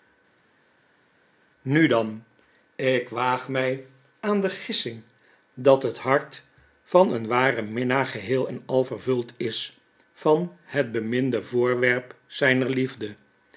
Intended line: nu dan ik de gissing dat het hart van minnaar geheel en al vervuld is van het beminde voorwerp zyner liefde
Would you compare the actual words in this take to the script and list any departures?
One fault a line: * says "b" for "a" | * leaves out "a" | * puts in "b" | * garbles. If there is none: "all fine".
* puts in "waag my aan"
* puts in "een waren"